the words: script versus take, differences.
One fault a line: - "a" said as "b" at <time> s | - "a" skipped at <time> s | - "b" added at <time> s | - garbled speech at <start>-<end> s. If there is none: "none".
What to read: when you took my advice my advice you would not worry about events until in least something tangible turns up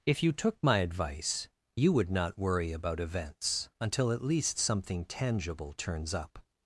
- "when" said as "if" at 0.0 s
- "my advice" skipped at 1.5 s
- "in" said as "at" at 4.1 s